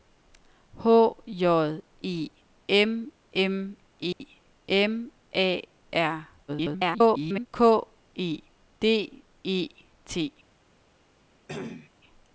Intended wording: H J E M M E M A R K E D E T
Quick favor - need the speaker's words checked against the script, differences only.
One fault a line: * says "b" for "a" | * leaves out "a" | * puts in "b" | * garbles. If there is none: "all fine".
* garbles